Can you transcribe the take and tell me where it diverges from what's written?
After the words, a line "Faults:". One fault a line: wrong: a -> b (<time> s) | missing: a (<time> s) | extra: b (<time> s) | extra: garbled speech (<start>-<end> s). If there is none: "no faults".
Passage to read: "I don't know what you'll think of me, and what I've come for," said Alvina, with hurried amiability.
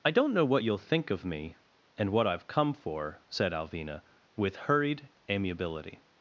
"I don't know what you'll think of me, and what I've come for," said Alvina, with hurried amiability.
Faults:
no faults